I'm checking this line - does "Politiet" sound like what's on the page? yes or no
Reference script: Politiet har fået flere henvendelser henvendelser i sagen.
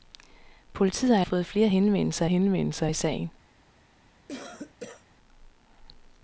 yes